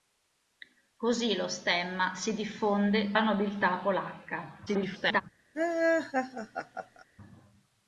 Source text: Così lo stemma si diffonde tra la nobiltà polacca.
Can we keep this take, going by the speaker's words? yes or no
no